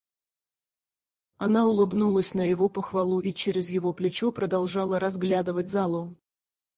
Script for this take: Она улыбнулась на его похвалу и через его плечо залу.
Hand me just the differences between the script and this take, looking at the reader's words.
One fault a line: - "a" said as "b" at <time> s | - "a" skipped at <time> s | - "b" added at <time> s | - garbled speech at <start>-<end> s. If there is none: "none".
- "продолжала разглядывать" added at 4.3 s